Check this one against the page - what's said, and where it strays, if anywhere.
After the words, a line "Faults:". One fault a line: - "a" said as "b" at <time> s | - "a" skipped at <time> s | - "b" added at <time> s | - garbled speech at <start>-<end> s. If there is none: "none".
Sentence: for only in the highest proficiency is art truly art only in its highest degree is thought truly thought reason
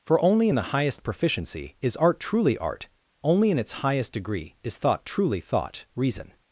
for only in the highest proficiency is art truly art only in its highest degree is thought truly thought reason
Faults:
none